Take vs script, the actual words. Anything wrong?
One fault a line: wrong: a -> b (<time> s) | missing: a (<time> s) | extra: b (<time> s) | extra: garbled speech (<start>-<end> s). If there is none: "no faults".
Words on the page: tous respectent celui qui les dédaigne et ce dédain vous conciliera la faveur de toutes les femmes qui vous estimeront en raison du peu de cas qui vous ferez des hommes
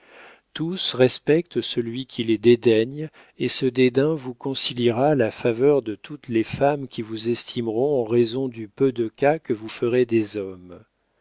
wrong: qui -> que (9.4 s)